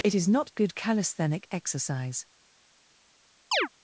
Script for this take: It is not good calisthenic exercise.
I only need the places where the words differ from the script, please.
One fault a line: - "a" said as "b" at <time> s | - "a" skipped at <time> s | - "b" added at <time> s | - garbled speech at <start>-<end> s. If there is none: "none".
none